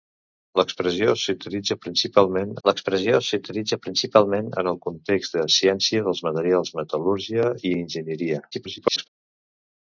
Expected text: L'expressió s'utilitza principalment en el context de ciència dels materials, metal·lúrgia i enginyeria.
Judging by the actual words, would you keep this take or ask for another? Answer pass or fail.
fail